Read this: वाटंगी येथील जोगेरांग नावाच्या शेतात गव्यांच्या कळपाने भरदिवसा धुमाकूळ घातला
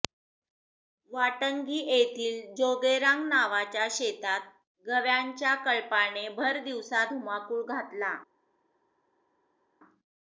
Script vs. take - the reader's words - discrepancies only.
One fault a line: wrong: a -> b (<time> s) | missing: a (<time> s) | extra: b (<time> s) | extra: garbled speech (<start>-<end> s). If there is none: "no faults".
no faults